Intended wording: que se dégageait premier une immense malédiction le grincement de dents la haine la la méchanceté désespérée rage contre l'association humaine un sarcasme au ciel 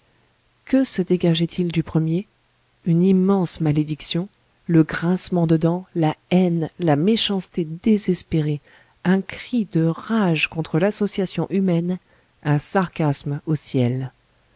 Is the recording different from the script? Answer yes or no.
yes